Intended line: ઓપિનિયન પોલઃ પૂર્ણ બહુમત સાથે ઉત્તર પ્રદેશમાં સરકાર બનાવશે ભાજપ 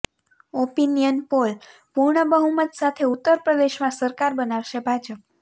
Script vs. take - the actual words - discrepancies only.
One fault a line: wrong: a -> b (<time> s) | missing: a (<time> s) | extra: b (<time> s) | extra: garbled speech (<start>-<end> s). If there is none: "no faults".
no faults